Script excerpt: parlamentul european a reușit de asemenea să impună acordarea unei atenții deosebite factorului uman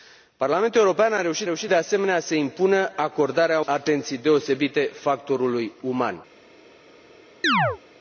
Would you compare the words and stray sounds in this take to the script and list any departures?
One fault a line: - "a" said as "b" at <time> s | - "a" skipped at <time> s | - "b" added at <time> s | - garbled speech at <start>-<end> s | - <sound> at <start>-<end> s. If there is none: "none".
- "reușit" added at 1.4 s
- "unei" skipped at 3.6 s
- chirp at 7.4-7.8 s